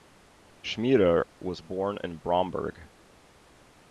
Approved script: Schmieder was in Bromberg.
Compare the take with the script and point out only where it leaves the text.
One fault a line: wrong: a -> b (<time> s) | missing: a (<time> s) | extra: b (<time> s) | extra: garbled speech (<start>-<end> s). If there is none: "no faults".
extra: born (1.6 s)